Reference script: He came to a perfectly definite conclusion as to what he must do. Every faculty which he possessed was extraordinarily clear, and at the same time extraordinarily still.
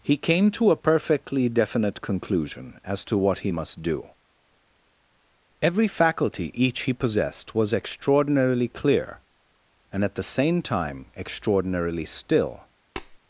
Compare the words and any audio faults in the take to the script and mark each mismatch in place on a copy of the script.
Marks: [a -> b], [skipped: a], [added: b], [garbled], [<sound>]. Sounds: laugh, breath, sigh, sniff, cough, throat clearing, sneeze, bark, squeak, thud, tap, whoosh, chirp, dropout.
He came to a perfectly definite conclusion as to what he must do. Every faculty [which -> each] he possessed was extraordinarily clear, and at the same time extraordinarily still. [tap]